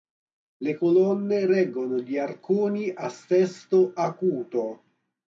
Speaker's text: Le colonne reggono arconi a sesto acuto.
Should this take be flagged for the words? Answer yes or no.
yes